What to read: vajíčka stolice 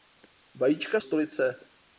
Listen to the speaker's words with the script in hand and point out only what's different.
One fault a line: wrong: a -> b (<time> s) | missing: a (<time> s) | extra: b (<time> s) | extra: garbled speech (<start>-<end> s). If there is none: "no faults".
no faults